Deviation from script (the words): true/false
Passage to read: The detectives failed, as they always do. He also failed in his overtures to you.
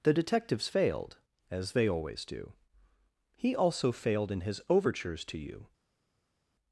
false